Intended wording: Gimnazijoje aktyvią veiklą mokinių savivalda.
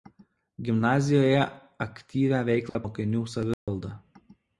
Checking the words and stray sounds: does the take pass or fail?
fail